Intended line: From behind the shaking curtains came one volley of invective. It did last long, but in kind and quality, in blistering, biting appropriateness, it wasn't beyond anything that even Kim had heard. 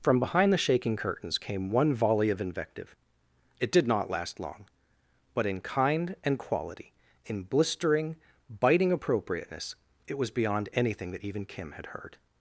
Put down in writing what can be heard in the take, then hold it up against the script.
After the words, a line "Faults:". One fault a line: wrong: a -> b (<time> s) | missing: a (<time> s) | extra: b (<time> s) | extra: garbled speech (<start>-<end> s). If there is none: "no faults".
From behind the shaking curtains came one volley of invective. It did not last long, but in kind and quality, in blistering, biting appropriateness, it was beyond anything that even Kim had heard.
Faults:
extra: not (3.9 s)
wrong: wasn't -> was (10.2 s)